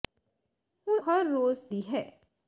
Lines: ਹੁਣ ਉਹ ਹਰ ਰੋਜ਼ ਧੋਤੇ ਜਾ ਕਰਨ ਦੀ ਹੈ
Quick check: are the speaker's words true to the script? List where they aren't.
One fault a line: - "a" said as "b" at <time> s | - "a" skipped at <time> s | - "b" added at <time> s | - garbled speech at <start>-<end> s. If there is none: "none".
- "ਉਹ" skipped at 1.0 s
- "ਧੋਤੇ ਜਾ ਕਰਨ" skipped at 1.6 s